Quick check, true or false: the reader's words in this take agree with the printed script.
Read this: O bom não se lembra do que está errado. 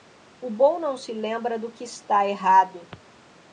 true